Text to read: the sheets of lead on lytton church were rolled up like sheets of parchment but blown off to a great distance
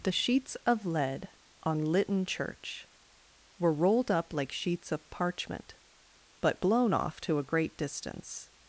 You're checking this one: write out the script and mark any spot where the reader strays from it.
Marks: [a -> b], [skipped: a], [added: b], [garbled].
the sheets of lead on lytton church were rolled up like sheets of parchment but blown off to a great distance